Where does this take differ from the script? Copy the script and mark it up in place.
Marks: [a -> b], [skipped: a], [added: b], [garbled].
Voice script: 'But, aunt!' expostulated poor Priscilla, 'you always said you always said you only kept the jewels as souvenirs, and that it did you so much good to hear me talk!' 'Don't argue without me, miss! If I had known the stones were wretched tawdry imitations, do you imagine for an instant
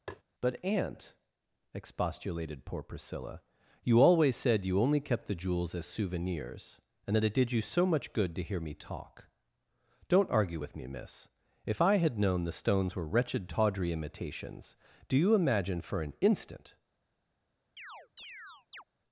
'But, aunt!' expostulated poor Priscilla, 'you always said you [skipped: always said you] only kept the jewels as souvenirs, and that it did you so much good to hear me talk!' 'Don't argue [without -> with] me, miss! If I had known the stones were wretched tawdry imitations, do you imagine for an instant